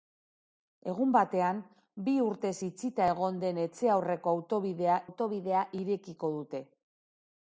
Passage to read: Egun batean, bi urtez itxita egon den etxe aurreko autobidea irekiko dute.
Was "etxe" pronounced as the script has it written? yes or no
yes